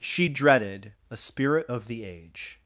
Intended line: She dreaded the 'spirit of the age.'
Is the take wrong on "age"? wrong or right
right